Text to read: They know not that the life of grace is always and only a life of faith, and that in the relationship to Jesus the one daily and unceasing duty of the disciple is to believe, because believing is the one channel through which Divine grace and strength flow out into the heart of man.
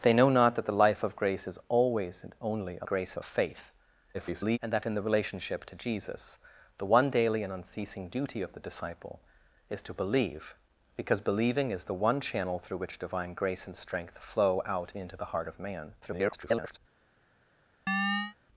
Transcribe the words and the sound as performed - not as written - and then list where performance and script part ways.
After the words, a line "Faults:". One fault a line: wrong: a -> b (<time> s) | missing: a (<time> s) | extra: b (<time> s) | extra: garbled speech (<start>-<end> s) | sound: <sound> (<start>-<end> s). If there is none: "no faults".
They know not that the life of grace is always and only a grace of faith, [garbled] and that in the relationship to Jesus the one daily and unceasing duty of the disciple is to believe, because believing is the one channel through which Divine grace and strength flow out into the heart of man. [garbled]
Faults:
wrong: life -> grace (2.8 s)
extra: garbled speech (4.1-4.6 s)
extra: garbled speech (16.0-16.8 s)
sound: chirp (17.9-18.4 s)